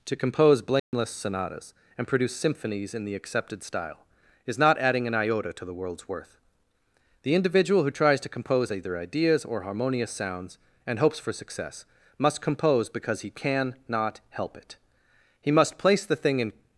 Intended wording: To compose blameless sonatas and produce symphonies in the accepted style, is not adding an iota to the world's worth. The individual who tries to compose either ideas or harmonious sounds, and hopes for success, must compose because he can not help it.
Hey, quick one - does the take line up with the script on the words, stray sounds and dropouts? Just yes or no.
no